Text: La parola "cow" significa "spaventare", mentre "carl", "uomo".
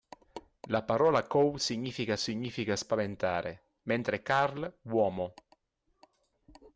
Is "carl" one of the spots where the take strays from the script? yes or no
no